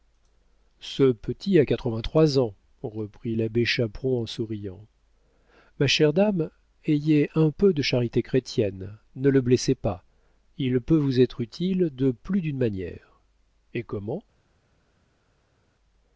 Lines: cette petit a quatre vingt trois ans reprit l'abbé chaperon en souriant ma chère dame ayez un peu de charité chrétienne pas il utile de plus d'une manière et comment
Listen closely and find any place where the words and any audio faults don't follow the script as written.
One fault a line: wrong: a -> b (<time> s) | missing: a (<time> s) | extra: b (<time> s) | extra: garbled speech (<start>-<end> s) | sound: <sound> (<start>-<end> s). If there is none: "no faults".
wrong: cette -> ce (0.8 s)
extra: ne le blessez (9.2 s)
extra: peut vous être (10.8 s)